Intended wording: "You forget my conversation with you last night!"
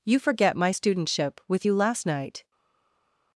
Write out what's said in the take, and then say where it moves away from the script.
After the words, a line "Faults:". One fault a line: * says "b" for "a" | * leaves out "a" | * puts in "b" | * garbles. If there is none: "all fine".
"You forget my studentship with you last night!"
Faults:
* says "studentship" for "conversation"